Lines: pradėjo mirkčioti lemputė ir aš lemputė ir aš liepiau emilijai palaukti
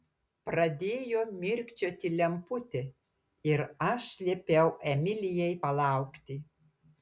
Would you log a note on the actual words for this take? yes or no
yes